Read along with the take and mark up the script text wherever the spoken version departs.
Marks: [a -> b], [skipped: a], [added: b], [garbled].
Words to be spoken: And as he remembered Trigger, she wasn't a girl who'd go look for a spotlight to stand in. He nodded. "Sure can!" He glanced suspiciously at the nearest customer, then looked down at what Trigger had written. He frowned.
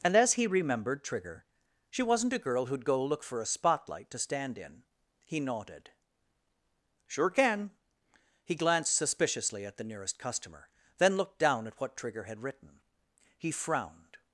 And as he remembered Trigger, she wasn't a girl who'd go look for a spotlight to stand in. He nodded. "Sure can!" He glanced suspiciously at the nearest customer, then looked down at what Trigger had written. He frowned.